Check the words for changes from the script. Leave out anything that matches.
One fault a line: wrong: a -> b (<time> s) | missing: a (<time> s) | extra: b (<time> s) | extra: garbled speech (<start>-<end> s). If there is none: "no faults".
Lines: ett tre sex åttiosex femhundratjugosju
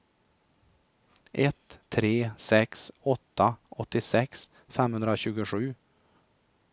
extra: åtta (3.0 s)